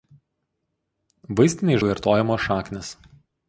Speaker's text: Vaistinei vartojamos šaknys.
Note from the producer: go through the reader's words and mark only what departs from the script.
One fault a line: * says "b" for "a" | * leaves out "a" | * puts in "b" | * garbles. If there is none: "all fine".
all fine